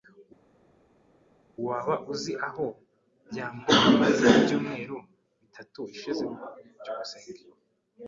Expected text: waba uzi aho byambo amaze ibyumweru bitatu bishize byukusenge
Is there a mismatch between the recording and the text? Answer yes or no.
no